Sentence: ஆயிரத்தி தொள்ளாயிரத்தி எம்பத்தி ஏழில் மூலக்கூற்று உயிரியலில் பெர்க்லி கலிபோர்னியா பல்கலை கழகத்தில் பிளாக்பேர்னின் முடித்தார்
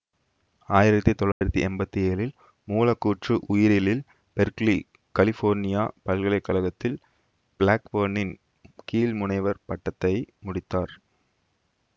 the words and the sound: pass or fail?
fail